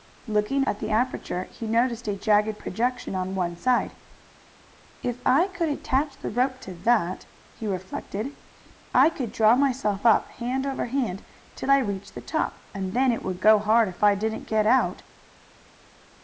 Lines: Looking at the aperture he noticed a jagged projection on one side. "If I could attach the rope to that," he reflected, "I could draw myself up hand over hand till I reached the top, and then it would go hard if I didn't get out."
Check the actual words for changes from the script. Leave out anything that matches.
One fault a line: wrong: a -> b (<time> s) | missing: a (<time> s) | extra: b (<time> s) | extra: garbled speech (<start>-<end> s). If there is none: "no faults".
no faults